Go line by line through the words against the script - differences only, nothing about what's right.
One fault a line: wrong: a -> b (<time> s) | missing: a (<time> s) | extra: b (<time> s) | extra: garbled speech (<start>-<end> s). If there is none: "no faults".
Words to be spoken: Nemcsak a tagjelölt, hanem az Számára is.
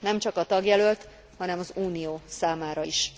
extra: Unió (1.7 s)